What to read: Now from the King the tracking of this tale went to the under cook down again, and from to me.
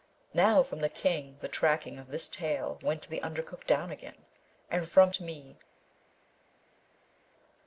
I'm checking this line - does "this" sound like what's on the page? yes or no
yes